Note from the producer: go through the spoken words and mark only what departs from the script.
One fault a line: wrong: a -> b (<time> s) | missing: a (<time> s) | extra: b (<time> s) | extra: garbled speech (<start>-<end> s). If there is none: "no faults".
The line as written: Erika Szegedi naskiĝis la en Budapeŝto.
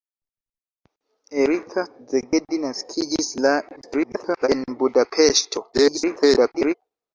extra: garbled speech (3.8-4.5 s)
extra: garbled speech (5.7-6.7 s)